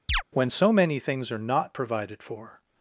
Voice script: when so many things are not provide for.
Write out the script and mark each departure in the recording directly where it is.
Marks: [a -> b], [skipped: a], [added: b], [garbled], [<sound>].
[chirp] when so many things are not [provide -> provided] for.